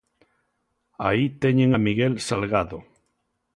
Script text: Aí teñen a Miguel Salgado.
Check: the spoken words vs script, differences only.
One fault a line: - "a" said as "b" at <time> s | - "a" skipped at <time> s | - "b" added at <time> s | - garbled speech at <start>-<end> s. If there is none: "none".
none